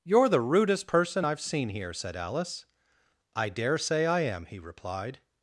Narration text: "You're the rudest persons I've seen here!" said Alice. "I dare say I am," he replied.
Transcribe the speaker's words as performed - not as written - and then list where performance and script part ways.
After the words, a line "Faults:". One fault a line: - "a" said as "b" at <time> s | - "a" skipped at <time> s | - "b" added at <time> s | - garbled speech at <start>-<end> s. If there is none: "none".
"You're the rudest person I've seen here!" said Alice. "I dare say I am," he replied.
Faults:
- "persons" said as "person" at 0.9 s